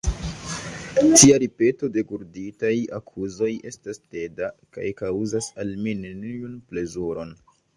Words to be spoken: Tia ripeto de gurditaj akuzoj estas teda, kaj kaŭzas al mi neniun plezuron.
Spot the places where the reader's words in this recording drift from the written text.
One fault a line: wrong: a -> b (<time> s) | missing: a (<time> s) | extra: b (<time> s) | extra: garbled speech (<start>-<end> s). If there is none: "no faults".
no faults